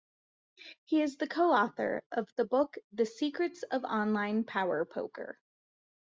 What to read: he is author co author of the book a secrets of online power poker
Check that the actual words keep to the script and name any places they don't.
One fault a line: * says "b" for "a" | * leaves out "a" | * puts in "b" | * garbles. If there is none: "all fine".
* says "the" for "author"
* says "the" for "a"